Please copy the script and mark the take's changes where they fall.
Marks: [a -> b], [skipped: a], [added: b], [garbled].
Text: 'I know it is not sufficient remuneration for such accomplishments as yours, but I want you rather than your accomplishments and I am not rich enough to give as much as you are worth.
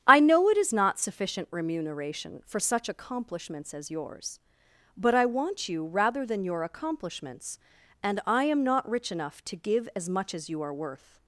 'I know it is not sufficient remuneration for such accomplishments as yours, but I want you rather than your accomplishments and I am not rich enough to give as much as you are worth.